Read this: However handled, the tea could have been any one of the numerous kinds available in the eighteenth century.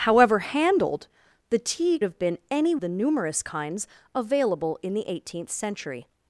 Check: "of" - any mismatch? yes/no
yes